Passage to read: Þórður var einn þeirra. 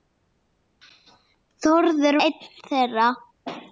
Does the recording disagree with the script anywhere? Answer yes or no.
yes